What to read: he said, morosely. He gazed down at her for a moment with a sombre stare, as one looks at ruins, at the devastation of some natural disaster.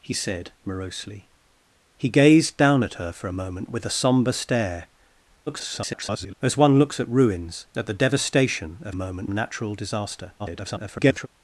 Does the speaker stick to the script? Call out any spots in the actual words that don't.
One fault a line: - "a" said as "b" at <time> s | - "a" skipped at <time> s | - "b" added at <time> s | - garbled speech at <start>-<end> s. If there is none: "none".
- garbled speech at 5.5-6.4 s
- "some" said as "moment" at 8.9 s
- garbled speech at 10.4-11.3 s